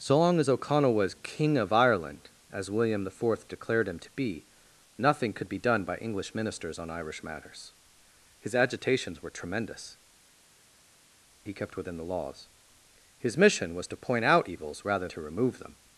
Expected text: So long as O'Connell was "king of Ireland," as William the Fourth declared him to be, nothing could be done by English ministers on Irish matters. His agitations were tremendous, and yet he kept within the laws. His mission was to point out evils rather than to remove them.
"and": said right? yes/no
no